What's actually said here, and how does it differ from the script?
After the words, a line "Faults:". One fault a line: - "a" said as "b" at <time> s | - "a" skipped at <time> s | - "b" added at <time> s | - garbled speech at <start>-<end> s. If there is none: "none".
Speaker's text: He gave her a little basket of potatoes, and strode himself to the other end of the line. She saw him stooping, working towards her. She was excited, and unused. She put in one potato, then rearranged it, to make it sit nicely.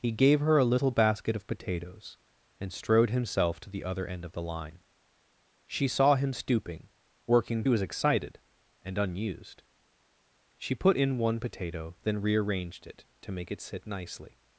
He gave her a little basket of potatoes, and strode himself to the other end of the line. She saw him stooping, working was excited, and unused. She put in one potato, then rearranged it, to make it sit nicely.
Faults:
- "towards her She" skipped at 7.6 s